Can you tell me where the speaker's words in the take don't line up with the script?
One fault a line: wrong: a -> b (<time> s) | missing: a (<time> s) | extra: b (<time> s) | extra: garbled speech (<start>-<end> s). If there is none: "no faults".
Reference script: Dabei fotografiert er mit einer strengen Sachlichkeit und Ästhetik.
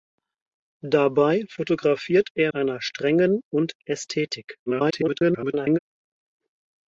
missing: mit (2.5 s)
missing: Sachlichkeit (3.4 s)
extra: garbled speech (4.7-5.8 s)